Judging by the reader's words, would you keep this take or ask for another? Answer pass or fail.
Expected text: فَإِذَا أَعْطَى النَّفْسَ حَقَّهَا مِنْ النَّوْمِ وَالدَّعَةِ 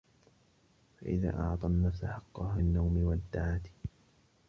fail